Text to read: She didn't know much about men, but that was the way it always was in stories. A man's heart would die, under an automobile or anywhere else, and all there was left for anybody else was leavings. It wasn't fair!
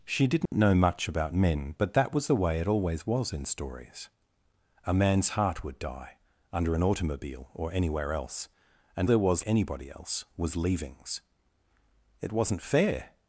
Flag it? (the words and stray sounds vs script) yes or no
yes